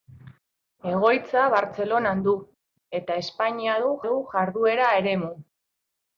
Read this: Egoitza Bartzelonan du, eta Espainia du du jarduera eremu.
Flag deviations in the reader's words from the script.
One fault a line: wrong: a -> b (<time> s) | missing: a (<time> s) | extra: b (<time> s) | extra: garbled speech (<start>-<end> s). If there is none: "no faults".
no faults